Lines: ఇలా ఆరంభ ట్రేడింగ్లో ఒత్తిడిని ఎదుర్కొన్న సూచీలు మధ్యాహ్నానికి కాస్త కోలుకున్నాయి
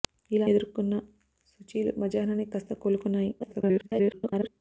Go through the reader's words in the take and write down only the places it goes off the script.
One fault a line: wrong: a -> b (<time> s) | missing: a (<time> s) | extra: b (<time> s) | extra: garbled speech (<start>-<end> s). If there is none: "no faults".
missing: ఆరంభ ట్రేడింగ్లో ఒత్తిడిని (0.5 s)
extra: garbled speech (3.4-4.5 s)